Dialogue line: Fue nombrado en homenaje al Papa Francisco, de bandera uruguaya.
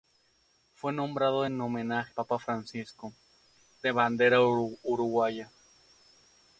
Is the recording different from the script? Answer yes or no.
yes